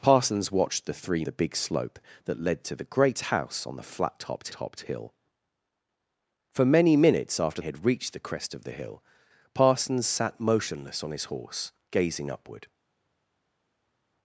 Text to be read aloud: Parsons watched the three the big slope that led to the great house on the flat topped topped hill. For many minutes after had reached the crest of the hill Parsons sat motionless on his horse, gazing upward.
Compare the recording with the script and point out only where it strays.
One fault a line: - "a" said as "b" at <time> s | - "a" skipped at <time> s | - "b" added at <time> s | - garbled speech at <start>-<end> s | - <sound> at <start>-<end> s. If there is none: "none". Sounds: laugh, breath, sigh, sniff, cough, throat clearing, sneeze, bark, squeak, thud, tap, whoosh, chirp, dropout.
none